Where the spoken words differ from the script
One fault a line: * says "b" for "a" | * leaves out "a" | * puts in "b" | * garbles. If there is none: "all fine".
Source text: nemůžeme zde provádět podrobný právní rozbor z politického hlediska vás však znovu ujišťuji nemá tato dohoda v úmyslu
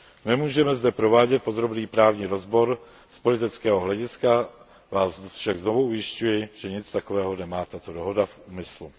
* puts in "že nic takového"